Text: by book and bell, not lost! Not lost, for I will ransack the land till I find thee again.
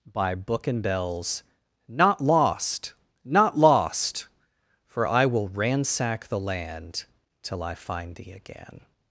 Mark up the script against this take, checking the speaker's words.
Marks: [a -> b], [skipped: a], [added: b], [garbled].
by book and [bell, -> bells] not lost! Not lost, for I will ransack the land till I find thee again.